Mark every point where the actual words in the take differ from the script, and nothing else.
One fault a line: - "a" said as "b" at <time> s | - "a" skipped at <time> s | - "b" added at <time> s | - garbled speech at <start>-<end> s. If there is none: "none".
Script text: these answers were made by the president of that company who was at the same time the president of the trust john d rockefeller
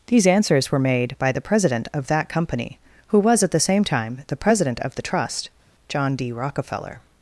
none